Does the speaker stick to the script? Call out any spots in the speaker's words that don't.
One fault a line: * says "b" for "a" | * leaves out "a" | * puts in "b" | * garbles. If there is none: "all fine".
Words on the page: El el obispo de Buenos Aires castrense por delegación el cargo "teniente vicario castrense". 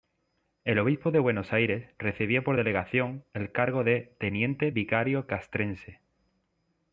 * leaves out "el"
* says "recibía" for "castrense"
* puts in "de"